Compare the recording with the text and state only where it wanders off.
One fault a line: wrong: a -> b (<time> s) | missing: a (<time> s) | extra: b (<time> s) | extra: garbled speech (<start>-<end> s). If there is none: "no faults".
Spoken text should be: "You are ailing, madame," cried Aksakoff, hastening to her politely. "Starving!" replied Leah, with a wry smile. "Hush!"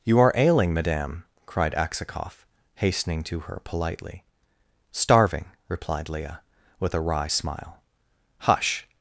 no faults